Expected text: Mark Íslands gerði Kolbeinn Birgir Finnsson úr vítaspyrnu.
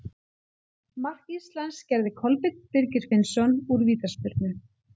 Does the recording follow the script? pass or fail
pass